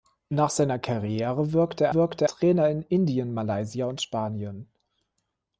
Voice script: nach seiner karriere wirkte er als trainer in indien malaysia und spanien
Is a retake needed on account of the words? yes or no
yes